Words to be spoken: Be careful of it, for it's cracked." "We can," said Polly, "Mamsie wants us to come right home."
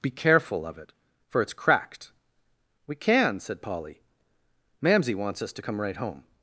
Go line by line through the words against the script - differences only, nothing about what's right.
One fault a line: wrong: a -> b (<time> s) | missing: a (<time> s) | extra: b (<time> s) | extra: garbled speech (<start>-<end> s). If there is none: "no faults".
no faults